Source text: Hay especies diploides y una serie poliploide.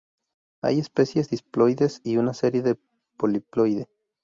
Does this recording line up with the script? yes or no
yes